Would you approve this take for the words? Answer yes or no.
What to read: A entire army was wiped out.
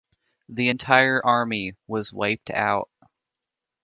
no